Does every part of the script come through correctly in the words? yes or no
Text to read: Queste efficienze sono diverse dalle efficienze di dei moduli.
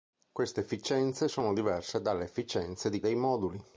yes